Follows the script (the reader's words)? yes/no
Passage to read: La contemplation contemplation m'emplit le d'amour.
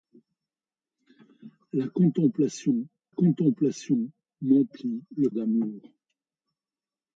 yes